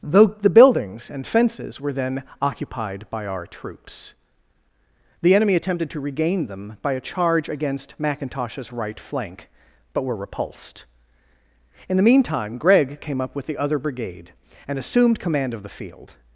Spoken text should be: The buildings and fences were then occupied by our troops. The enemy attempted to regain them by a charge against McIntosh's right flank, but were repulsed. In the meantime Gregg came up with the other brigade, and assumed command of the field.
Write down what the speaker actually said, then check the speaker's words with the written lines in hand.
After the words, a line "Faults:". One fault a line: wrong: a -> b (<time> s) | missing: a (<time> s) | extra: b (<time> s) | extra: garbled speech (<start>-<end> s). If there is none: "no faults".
though The buildings and fences were then occupied by our troops. The enemy attempted to regain them by a charge against McIntosh's right flank, but were repulsed. In the meantime Gregg came up with the other brigade, and assumed command of the field.
Faults:
extra: though (0.0 s)